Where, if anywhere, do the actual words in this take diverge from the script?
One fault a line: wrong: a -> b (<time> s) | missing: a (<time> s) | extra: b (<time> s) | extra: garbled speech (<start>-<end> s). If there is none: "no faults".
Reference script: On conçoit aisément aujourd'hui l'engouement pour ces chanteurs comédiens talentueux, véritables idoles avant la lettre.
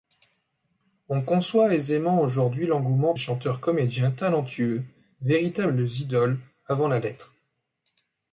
missing: pour ces (3.1 s)